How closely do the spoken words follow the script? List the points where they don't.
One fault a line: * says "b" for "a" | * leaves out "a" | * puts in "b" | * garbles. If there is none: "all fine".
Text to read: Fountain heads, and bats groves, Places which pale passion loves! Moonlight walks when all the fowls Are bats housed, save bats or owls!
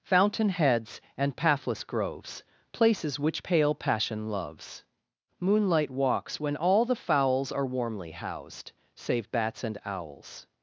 * says "pathless" for "bats"
* says "warmly" for "bats"
* says "and" for "or"